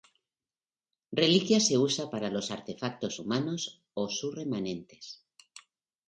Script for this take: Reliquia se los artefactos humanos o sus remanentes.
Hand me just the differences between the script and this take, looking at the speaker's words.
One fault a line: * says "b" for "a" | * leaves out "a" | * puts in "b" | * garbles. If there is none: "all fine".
* puts in "usa para"